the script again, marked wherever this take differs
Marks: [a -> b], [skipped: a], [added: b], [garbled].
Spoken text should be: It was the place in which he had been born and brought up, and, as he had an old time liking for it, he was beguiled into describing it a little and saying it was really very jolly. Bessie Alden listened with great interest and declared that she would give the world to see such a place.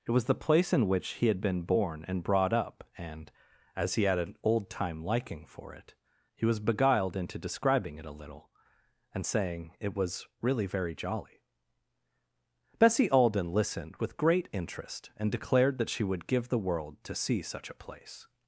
It was the place in which he had been born and brought up, and, as he had an old time liking for it, he was beguiled into describing it a little and saying it was really very jolly. Bessie Alden listened with great interest and declared that she would give the world to see such a place.